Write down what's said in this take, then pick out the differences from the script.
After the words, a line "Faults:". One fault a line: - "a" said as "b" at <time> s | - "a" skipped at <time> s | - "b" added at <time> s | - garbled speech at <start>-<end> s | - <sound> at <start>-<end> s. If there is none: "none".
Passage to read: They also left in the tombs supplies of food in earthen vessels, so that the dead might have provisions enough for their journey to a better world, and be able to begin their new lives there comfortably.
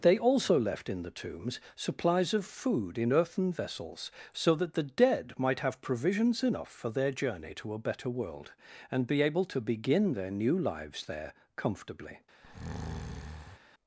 They also left in the tombs supplies of food in earthen vessels, so that the dead might have provisions enough for their journey to a better world, and be able to begin their new lives there comfortably.
Faults:
- breath at 12.4-13.6 s